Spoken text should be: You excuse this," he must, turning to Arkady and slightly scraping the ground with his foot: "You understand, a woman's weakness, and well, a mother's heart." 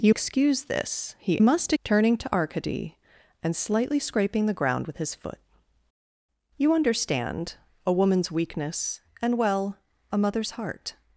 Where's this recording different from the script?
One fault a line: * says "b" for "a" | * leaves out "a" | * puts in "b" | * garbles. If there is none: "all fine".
all fine